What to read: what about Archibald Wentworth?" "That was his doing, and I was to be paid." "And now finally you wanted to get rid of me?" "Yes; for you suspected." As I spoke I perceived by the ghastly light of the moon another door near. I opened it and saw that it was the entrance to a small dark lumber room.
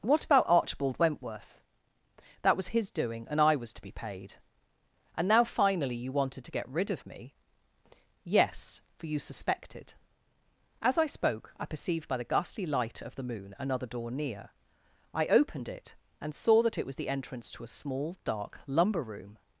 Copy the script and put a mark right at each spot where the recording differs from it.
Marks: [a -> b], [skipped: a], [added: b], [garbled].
what about Archibald Wentworth?" "That was his doing, and I was to be paid." "And now finally you wanted to get rid of me?" "Yes; for you suspected." As I spoke I perceived by the ghastly light of the moon another door near. I opened it and saw that it was the entrance to a small dark lumber room.